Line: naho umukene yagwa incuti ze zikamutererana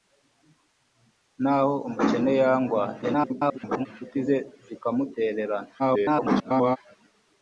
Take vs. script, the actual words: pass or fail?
fail